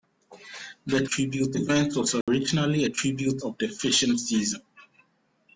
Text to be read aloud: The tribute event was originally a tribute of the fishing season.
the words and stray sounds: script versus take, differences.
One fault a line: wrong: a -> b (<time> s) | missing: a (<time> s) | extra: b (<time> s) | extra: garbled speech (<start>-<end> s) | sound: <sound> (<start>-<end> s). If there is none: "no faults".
sound: dropout (2.2-2.3 s)